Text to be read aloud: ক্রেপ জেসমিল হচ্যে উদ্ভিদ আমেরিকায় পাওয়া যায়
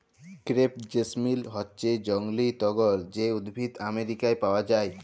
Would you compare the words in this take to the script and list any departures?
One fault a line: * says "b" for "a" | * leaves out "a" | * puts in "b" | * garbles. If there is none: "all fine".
* puts in "জংলী টগর যে"